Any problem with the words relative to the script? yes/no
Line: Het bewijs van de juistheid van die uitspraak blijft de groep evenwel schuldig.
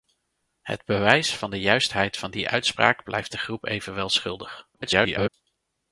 yes